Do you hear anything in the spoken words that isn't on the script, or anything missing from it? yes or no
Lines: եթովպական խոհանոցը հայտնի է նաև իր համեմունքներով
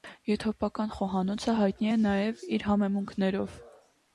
no